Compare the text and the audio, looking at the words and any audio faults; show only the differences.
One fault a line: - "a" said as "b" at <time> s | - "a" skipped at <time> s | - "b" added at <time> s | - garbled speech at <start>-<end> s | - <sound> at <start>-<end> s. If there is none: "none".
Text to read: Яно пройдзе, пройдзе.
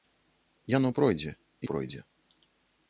none